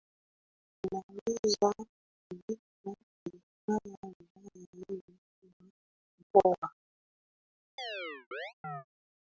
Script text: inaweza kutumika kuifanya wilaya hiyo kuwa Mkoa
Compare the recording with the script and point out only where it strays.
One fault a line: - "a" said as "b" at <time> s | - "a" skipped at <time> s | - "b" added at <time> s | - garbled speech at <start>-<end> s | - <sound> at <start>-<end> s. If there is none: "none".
- chirp at 7.8-8.9 s